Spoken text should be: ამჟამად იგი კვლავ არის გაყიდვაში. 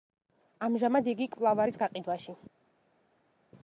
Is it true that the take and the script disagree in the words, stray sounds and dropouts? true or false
false